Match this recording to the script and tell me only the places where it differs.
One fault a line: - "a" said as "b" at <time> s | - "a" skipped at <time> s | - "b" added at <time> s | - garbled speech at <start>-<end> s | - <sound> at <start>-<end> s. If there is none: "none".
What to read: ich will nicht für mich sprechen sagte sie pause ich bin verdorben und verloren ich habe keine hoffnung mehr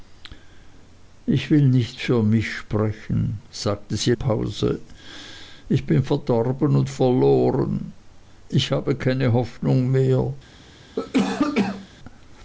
- cough at 11.0-11.9 s